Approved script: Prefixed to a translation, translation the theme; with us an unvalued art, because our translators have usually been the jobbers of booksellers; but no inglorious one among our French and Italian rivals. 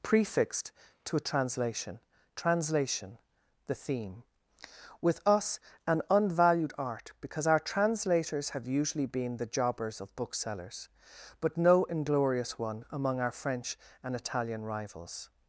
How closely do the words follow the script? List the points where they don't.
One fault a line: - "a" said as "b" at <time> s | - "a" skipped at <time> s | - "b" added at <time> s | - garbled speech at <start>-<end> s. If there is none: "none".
none